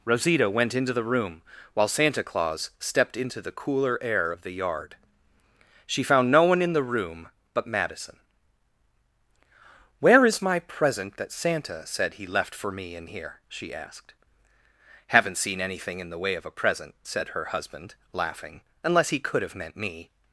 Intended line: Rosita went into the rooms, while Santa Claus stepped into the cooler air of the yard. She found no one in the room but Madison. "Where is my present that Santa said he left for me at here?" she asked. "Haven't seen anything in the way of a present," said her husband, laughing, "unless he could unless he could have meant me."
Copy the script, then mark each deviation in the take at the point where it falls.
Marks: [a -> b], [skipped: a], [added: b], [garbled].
Rosita went into the [rooms, -> room] while Santa Claus stepped into the cooler air of the yard. She found no one in the room but Madison. "Where is my present that Santa said he left for me [at -> in] here?" she asked. "Haven't seen anything in the way of a present," said her husband, laughing, "unless he could [skipped: unless he could] have meant me."